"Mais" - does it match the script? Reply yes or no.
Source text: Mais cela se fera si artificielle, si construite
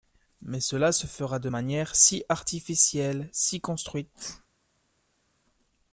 yes